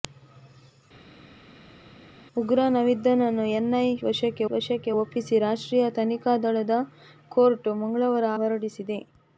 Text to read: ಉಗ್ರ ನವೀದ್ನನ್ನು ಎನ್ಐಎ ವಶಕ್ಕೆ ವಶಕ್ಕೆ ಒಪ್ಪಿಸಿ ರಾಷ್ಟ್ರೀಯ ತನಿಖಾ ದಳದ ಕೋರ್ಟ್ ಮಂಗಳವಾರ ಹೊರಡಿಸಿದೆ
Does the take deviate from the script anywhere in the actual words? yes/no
no